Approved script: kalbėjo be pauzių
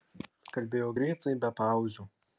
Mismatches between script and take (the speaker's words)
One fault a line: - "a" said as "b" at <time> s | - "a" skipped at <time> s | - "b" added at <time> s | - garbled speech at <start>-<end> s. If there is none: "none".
- "greitai" added at 1.0 s